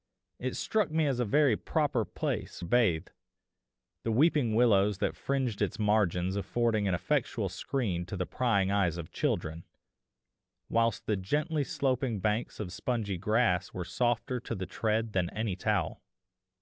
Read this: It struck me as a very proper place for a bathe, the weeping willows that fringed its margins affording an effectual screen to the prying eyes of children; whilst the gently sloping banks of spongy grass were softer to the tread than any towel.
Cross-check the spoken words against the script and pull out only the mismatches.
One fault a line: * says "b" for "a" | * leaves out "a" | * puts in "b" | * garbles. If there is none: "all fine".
* leaves out "for"